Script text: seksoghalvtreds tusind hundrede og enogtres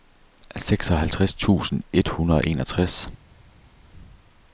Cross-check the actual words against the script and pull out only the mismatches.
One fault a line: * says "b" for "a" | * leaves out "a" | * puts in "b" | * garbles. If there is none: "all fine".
* puts in "et"